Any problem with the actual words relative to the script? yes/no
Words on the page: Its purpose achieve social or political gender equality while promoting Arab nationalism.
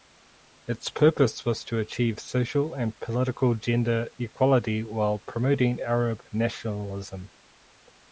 yes